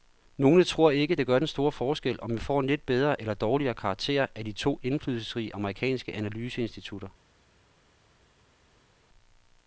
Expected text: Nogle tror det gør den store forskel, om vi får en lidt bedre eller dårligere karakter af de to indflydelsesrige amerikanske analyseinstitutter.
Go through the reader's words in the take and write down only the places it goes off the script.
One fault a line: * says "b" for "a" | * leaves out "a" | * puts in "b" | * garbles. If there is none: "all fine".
* puts in "ikke"